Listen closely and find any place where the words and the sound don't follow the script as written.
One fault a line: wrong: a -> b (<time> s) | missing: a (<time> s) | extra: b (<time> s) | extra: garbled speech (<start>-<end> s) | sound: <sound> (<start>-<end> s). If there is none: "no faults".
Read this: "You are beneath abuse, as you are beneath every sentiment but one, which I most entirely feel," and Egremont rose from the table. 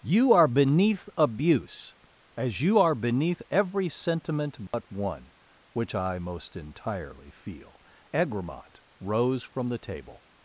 sound: dropout (4.7-4.7 s)
missing: and (7.8 s)